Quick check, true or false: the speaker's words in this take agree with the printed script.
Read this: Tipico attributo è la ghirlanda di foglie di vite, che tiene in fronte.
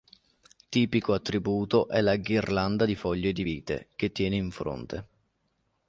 true